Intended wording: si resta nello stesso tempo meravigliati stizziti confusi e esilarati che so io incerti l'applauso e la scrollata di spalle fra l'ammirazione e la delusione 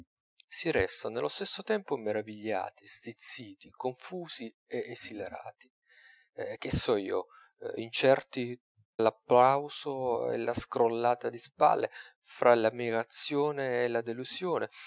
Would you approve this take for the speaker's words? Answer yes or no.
yes